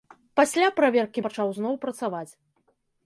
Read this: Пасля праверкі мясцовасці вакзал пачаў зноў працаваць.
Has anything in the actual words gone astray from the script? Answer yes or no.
yes